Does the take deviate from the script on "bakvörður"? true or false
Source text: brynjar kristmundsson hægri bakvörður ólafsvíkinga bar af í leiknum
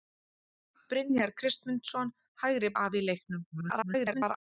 true